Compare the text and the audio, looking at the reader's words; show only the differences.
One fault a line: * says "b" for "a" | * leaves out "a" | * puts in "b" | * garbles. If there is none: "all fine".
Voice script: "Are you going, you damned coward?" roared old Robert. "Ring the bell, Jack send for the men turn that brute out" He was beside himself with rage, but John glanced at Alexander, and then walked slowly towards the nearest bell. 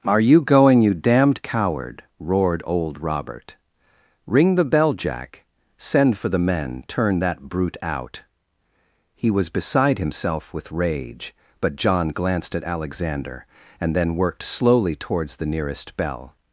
* says "worked" for "walked"